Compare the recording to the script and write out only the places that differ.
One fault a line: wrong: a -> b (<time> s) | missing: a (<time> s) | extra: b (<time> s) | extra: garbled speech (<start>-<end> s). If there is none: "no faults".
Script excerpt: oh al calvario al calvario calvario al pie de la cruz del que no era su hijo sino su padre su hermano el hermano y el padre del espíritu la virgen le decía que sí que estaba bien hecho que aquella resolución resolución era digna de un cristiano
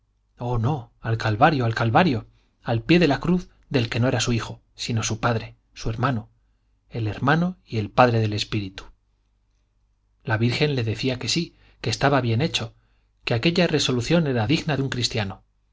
extra: no (0.6 s)
missing: calvario (2.2 s)
missing: resolución (14.3 s)